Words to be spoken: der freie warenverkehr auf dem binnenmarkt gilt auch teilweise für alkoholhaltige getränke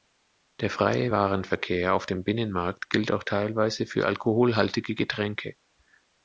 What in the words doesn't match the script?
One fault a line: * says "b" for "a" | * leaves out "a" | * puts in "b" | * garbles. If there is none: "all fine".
all fine